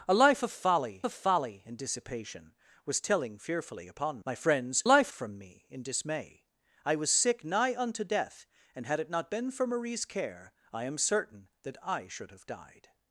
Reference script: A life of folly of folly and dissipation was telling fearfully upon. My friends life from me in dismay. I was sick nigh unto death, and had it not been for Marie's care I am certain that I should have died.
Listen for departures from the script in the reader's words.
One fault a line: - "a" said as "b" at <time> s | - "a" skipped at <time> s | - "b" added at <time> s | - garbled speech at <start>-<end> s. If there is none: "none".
none